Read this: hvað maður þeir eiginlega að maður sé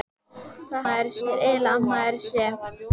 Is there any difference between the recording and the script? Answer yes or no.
no